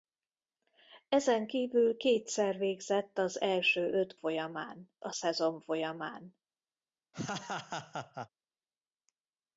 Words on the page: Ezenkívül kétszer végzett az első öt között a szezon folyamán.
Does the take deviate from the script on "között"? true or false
true